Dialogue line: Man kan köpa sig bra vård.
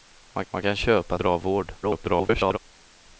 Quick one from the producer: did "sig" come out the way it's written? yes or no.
no